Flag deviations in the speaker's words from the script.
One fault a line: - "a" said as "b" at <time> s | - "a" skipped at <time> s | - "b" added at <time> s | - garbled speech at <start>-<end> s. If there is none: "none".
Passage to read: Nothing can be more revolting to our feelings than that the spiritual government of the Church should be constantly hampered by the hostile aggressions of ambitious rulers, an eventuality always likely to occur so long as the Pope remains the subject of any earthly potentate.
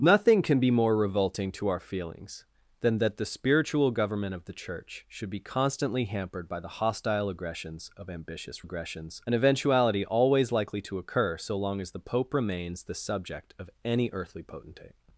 - "rulers" said as "aggressions" at 8.6 s